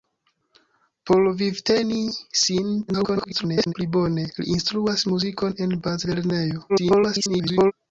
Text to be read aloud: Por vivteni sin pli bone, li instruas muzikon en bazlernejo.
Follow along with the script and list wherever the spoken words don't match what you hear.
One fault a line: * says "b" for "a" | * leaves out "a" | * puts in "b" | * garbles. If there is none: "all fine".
* garbles
* garbles